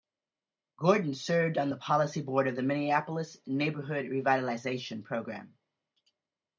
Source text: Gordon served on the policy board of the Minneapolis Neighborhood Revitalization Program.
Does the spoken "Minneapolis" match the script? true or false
true